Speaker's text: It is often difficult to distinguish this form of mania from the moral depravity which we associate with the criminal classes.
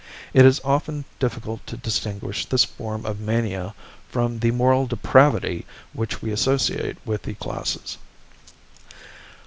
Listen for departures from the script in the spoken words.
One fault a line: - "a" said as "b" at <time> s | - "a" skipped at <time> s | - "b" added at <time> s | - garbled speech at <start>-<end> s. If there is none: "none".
- "criminal" skipped at 7.3 s